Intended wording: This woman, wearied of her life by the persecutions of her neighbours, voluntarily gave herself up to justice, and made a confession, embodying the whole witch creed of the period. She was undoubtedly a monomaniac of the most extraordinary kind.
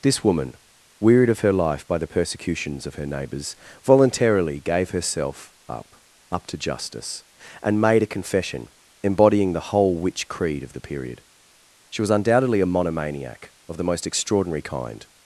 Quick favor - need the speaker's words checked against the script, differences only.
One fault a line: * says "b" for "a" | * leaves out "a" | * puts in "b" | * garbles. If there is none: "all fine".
* puts in "up"